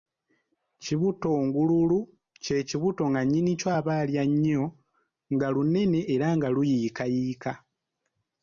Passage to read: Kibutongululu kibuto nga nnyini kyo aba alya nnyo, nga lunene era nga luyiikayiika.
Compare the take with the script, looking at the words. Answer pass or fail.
fail